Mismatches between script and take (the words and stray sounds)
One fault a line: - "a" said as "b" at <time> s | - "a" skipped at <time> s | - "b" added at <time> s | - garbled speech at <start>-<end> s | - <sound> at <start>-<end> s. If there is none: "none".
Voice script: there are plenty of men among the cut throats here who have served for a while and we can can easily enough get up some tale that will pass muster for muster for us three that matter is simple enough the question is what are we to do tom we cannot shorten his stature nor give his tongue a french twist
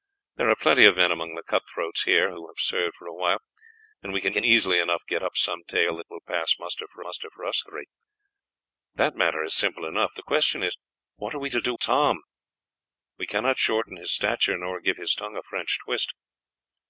none